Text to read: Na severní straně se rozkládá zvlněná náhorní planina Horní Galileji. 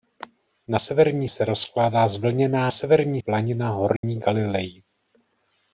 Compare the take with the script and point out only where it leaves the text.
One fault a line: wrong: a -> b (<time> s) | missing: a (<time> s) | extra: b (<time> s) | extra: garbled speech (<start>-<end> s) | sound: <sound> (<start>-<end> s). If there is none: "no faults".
missing: straně (1.3 s)
wrong: náhorní -> severní (2.7 s)
sound: dropout (4.0-4.0 s)